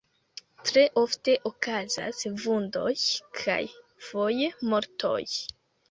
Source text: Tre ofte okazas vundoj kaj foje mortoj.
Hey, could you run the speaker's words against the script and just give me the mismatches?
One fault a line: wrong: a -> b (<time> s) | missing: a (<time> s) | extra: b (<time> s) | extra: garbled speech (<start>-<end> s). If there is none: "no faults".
no faults